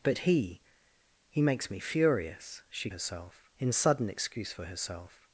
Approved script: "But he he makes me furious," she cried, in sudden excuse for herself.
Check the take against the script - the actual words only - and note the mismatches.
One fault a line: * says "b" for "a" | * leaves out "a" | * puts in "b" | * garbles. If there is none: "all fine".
* says "herself" for "cried"